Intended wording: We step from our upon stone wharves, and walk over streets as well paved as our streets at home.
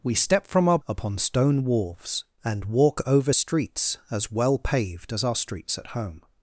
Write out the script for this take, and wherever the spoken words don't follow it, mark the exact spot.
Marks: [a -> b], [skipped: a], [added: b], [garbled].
We step from our upon stone wharves, and walk over streets as well paved as our streets at home.